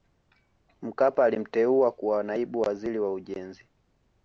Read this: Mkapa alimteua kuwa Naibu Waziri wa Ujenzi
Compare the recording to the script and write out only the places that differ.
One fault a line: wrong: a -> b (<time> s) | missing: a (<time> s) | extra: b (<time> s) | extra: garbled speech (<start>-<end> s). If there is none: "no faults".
no faults